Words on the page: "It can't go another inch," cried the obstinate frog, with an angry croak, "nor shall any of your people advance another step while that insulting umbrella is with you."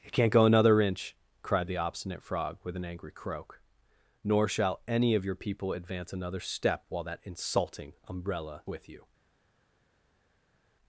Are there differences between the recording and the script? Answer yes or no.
yes